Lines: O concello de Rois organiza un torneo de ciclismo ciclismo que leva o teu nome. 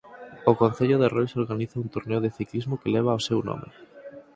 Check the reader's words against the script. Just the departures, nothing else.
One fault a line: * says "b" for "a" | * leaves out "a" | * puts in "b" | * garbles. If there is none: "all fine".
* leaves out "ciclismo"
* says "seu" for "teu"